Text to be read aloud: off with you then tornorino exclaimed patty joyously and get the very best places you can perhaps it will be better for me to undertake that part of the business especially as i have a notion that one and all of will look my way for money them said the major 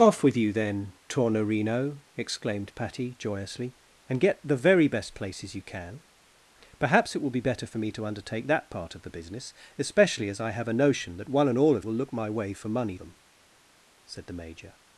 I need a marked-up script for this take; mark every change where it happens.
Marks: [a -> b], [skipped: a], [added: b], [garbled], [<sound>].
off with you then tornorino exclaimed patty joyously and get the very best places you can perhaps it will be better for me to undertake that part of the business especially as i have a notion that one and all of will look my way for money them said the major